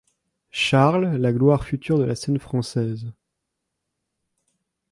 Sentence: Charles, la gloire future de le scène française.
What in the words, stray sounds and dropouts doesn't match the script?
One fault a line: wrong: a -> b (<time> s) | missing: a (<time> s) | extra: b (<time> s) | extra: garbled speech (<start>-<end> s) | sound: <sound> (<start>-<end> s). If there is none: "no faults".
wrong: le -> la (2.0 s)